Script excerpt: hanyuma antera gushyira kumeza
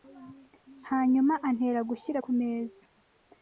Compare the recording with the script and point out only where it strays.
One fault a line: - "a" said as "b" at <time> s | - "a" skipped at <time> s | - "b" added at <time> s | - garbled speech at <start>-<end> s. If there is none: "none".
none